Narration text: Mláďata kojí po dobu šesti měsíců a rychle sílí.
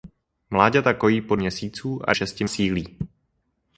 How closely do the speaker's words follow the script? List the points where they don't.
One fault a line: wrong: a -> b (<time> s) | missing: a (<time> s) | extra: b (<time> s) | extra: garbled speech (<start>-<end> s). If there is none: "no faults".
missing: dobu šesti (1.4 s)
wrong: rychle -> šesti (2.1 s)